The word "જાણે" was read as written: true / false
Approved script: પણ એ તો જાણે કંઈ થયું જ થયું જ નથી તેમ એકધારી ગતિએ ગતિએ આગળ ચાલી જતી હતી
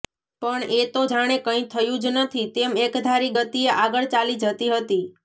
true